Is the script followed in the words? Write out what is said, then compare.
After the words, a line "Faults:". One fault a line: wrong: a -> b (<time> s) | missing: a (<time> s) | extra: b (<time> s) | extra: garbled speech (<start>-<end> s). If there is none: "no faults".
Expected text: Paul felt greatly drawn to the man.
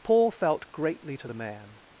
Paul felt greatly to the man.
Faults:
missing: drawn (1.1 s)